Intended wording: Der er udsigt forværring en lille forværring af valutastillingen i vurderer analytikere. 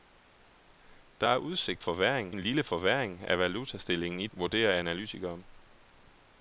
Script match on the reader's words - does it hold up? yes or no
yes